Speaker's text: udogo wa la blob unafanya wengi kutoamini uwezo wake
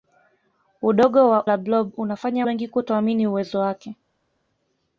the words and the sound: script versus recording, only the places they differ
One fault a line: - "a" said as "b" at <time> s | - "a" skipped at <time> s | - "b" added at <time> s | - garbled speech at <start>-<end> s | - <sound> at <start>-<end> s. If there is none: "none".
none